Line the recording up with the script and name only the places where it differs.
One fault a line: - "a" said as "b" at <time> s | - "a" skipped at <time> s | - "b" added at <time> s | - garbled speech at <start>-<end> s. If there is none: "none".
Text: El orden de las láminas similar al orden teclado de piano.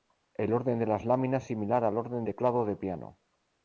none